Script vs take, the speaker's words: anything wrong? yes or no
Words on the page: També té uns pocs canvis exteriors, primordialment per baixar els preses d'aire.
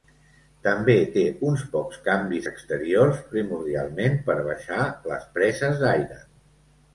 yes